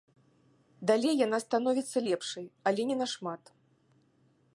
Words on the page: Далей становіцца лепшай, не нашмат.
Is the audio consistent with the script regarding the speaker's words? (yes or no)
no